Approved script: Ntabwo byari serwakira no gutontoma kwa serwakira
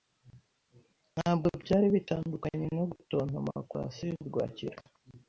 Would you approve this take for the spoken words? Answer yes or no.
no